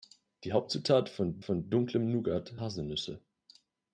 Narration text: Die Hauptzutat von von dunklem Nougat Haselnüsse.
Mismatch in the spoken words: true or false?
false